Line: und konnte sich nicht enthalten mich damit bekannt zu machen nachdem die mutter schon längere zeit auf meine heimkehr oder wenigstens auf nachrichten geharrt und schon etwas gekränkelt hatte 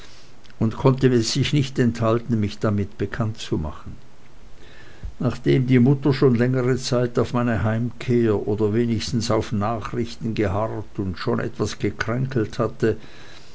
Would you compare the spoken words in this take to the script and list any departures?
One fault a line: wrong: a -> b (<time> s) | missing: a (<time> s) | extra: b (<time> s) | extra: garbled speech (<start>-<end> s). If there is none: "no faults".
no faults